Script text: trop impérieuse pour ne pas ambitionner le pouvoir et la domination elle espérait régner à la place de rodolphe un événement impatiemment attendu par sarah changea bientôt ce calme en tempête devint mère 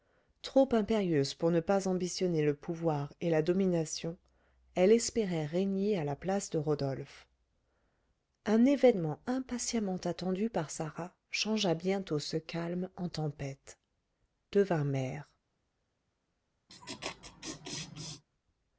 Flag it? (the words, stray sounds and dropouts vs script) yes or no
yes